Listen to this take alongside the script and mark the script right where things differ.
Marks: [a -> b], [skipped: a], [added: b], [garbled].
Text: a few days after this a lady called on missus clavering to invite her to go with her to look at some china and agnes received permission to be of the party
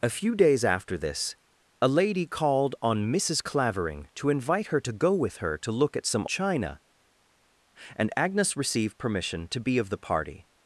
a few days after this a lady called on missus clavering to invite her to go with her to look at some china and agnes received permission to be of the party